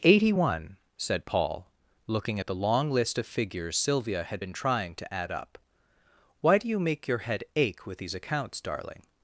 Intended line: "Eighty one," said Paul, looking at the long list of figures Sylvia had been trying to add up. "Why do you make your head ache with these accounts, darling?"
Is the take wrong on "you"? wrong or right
right